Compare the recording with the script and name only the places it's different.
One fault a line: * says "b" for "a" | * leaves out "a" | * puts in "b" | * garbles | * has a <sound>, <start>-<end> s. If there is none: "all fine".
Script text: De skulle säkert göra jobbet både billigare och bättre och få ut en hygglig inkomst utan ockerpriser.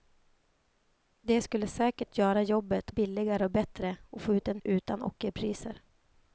* leaves out "både"
* leaves out "hygglig inkomst"